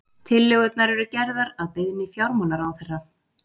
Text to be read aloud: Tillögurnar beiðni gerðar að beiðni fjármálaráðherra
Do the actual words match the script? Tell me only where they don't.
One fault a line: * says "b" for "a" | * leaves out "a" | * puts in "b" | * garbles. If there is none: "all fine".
* says "eru" for "beiðni"